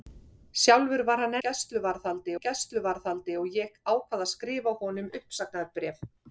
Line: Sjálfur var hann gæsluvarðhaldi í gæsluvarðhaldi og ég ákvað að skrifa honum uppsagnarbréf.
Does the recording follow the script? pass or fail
pass